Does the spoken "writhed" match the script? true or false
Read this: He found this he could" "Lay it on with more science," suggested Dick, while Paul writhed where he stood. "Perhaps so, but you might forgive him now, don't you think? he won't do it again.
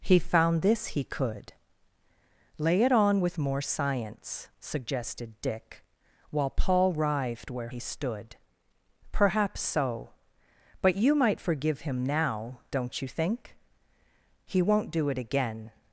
true